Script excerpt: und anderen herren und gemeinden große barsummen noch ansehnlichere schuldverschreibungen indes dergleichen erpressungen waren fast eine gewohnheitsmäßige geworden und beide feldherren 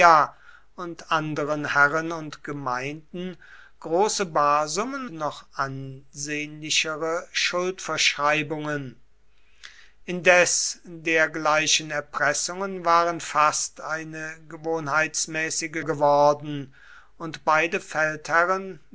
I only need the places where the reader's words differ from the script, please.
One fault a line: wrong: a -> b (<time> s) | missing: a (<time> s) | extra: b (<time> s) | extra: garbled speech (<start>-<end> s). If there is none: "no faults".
no faults